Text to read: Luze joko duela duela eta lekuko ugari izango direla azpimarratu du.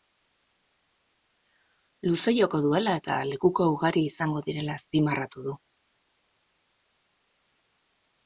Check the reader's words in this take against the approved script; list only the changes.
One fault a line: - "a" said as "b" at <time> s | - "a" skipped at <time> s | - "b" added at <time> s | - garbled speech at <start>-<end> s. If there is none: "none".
- "duela" skipped at 3.0 s